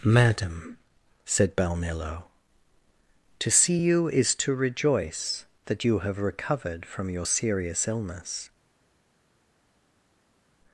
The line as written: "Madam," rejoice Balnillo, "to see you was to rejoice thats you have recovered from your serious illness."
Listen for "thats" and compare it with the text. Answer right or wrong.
wrong